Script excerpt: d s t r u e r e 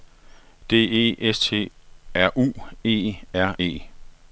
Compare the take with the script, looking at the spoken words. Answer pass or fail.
fail